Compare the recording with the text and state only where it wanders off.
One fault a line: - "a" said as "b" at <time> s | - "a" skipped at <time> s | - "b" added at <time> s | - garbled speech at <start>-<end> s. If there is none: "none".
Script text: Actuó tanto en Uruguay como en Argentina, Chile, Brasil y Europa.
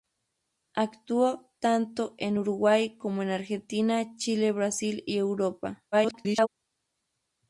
- garbled speech at 5.9-6.5 s